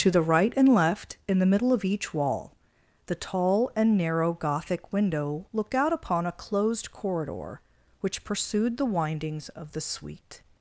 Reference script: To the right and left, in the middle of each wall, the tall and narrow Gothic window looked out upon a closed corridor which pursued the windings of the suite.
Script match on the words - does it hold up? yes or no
yes